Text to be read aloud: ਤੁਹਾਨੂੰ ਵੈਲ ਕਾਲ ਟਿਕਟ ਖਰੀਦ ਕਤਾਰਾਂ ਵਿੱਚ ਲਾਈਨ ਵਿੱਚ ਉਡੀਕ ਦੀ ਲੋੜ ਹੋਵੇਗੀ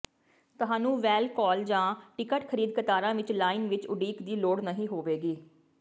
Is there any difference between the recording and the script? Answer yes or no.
yes